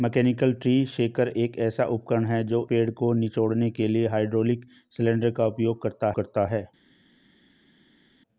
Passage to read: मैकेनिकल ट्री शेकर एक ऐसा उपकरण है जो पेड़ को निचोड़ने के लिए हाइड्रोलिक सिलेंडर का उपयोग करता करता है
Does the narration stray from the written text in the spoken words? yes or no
no